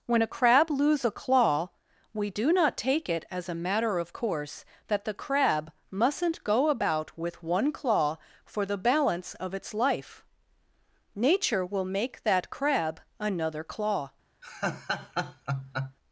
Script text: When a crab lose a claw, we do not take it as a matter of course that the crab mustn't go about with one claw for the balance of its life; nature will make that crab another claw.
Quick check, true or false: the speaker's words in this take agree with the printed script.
true